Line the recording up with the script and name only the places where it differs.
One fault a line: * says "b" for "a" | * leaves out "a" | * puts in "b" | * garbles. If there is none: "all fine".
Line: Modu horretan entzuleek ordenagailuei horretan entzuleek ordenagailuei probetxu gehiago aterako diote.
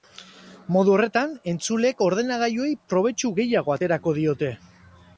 * leaves out "horretan entzuleek ordenagailuei"